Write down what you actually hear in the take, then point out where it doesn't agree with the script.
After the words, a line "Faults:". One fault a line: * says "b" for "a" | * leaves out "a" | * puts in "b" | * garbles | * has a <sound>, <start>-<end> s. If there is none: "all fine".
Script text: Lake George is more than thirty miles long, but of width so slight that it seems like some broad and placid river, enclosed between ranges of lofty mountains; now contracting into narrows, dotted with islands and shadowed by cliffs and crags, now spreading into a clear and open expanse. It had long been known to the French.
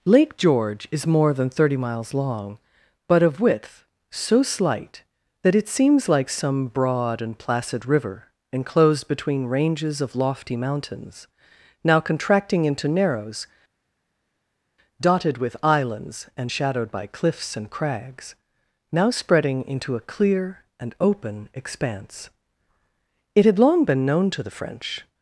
Lake George is more than thirty miles long, but of width so slight that it seems like some broad and placid river, enclosed between ranges of lofty mountains; now contracting into narrows, dotted with islands and shadowed by cliffs and crags, now spreading into a clear and open expanse. It had long been known to the French.
Faults:
all fine